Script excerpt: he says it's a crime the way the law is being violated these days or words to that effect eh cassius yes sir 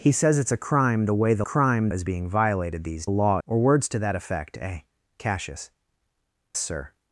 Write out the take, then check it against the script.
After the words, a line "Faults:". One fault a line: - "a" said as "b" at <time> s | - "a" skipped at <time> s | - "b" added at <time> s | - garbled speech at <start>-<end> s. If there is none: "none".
he says it's a crime the way the crime is being violated these law or words to that effect eh cassius sir
Faults:
- "law" said as "crime" at 1.4 s
- "days" said as "law" at 3.1 s
- "yes" skipped at 5.7 s